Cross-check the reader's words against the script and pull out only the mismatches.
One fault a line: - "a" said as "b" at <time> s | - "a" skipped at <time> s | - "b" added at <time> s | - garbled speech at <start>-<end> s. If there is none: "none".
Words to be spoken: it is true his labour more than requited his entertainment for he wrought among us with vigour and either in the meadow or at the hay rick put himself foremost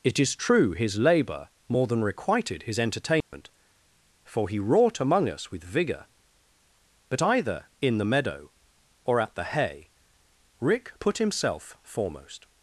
- "and" said as "but" at 7.1 s